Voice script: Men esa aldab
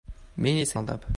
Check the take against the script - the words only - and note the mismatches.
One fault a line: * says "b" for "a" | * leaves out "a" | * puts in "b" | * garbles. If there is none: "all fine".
all fine